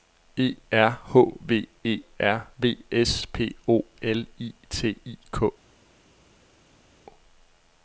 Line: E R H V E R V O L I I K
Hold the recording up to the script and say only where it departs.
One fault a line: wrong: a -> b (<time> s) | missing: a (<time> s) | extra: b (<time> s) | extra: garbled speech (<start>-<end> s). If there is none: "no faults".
extra: S P (2.9 s)
extra: T (4.7 s)